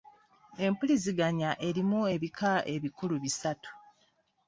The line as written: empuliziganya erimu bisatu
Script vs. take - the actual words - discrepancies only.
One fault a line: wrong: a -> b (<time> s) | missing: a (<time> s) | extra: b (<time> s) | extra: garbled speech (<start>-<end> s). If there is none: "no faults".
extra: ebika ebikulu (2.1 s)